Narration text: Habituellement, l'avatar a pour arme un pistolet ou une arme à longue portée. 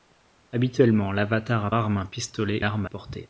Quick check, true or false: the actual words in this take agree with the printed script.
false